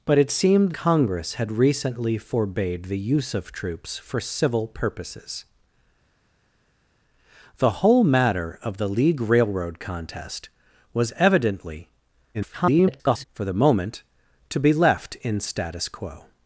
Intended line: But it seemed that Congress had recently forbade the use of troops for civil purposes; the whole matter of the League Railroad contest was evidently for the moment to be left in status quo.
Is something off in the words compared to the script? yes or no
yes